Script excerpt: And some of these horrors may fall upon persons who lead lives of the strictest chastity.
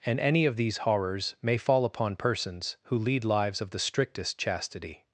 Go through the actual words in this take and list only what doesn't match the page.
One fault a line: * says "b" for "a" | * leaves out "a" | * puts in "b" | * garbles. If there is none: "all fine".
* says "any" for "some"